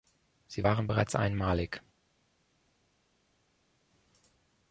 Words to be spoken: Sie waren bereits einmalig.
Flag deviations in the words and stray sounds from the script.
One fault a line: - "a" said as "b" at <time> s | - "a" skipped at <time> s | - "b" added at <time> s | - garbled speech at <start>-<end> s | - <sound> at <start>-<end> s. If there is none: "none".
none